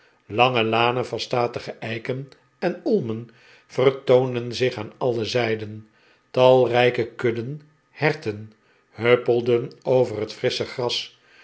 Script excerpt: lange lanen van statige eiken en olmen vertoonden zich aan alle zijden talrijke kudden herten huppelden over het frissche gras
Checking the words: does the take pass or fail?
pass